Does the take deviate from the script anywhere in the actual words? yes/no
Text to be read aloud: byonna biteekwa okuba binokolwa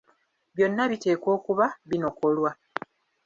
no